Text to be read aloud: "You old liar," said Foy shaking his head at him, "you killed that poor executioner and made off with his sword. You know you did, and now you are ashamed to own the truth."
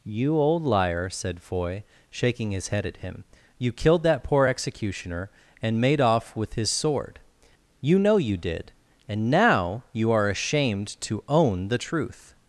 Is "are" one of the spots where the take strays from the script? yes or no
no